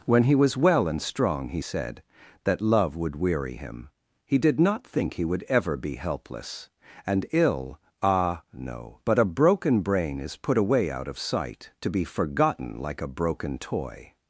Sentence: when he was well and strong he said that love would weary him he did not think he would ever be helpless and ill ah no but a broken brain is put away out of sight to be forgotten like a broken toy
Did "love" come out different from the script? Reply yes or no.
no